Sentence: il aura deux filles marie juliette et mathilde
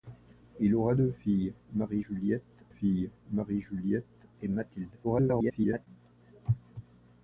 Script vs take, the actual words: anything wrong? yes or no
yes